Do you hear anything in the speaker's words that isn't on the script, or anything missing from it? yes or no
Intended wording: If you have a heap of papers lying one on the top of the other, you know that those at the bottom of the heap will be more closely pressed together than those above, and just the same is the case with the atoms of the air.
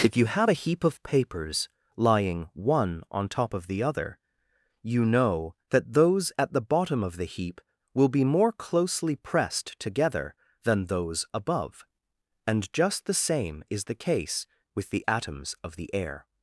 yes